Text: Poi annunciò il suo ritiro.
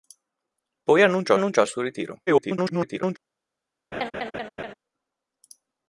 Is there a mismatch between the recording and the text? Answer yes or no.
yes